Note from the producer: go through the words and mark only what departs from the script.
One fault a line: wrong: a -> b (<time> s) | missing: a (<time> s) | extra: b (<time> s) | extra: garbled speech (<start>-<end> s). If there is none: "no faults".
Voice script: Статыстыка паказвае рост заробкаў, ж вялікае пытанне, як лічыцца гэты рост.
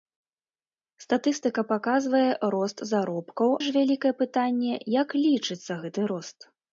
no faults